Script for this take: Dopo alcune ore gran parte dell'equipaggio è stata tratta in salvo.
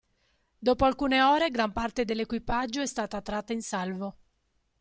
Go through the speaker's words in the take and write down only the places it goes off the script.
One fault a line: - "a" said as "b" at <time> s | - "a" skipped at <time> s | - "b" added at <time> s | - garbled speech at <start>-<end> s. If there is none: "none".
none